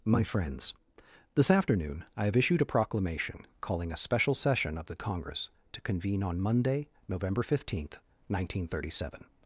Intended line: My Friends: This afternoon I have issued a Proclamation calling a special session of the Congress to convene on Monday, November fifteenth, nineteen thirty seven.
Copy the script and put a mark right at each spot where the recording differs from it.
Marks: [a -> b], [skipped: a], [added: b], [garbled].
My Friends: This afternoon I have issued a Proclamation calling a special session of the Congress to convene on Monday, November fifteenth, nineteen thirty seven.